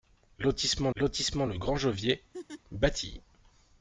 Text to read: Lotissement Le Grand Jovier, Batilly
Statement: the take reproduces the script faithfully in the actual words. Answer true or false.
false